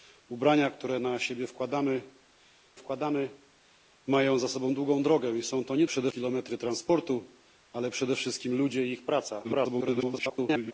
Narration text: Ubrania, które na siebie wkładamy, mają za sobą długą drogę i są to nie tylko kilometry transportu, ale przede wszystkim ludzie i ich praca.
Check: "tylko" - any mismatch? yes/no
yes